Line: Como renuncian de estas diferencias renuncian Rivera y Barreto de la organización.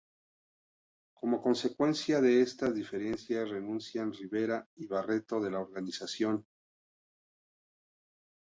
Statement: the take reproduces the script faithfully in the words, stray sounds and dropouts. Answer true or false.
false